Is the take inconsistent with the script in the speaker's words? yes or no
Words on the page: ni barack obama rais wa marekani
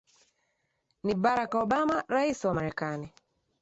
no